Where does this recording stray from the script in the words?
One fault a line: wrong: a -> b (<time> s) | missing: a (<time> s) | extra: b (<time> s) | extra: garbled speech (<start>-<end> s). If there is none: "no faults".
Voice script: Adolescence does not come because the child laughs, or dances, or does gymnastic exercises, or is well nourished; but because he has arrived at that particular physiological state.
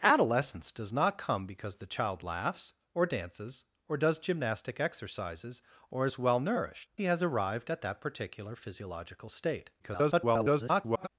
missing: but because (6.9 s)
extra: garbled speech (9.8-11.1 s)